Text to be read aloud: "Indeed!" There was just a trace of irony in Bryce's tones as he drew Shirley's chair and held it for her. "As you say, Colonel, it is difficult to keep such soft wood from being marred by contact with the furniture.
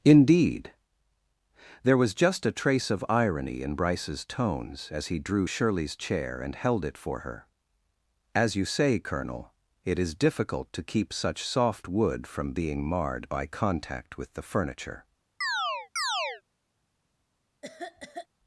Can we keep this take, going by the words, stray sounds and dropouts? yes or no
no